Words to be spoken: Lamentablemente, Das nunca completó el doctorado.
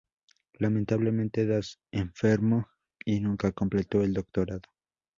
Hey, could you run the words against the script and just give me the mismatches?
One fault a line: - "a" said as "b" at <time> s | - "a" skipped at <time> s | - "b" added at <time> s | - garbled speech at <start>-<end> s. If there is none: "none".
- "enfermó y" added at 1.9 s